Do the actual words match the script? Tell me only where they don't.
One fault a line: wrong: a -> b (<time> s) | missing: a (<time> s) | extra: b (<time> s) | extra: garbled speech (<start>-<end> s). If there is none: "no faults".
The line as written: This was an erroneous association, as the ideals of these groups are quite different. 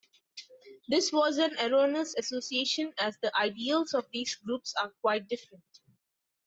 no faults